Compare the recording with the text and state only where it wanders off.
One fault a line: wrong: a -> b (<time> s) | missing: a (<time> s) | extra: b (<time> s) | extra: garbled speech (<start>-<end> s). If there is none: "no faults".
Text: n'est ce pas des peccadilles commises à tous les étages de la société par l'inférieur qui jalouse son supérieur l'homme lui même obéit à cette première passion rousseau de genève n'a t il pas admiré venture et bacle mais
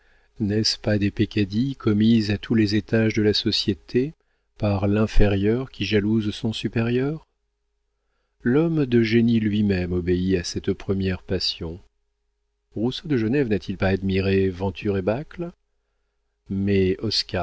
extra: de génie (8.8 s)